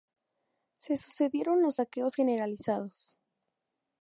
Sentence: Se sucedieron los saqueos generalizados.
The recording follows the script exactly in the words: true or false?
true